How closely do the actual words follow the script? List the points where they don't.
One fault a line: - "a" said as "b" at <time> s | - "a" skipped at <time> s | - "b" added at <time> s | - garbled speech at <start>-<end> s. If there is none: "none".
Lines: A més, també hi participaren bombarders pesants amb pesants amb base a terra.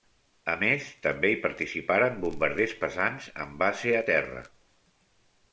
- "pesants amb" skipped at 3.6 s